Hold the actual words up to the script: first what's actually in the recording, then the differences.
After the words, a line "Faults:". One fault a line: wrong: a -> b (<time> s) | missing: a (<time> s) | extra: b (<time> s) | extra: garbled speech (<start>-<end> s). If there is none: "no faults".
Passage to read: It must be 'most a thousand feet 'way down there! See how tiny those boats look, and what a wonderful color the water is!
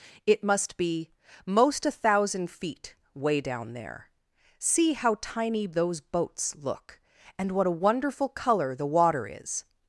It must be 'most a thousand feet 'way down there! See how tiny those boats look, and what a wonderful color the water is!
Faults:
no faults